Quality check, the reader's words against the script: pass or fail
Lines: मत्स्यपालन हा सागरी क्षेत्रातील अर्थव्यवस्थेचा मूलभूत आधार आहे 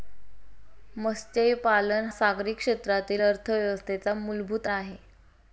fail